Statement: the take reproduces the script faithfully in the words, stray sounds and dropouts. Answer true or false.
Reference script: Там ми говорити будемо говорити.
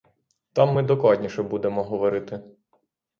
false